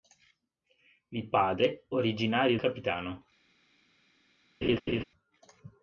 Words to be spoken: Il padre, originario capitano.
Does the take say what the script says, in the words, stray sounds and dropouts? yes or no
no